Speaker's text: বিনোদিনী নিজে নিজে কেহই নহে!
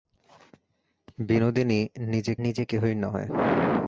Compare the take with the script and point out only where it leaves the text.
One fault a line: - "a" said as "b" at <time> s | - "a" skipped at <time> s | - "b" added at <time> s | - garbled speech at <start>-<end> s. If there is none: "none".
none